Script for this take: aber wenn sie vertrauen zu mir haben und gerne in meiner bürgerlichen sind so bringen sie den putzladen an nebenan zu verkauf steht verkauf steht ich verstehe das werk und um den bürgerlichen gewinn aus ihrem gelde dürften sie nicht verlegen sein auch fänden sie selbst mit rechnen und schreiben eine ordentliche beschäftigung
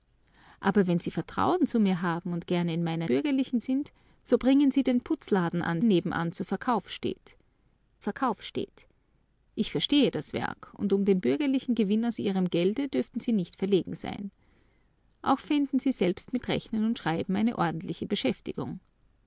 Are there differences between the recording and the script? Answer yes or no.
no